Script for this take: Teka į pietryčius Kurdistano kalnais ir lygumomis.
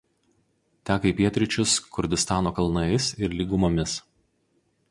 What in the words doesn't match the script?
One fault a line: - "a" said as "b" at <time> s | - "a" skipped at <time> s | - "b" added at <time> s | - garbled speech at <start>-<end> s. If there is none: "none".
none